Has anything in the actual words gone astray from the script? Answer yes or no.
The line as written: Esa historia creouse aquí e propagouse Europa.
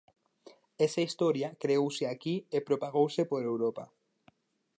yes